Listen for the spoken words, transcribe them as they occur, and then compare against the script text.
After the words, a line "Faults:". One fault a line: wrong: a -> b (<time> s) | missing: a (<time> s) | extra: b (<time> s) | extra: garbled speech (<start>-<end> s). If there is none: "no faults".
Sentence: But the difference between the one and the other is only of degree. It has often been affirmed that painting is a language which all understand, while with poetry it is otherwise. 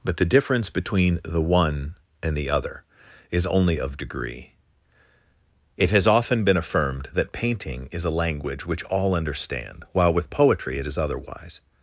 But the difference between the one and the other is only of degree. It has often been affirmed that painting is a language which all understand, while with poetry it is otherwise.
Faults:
no faults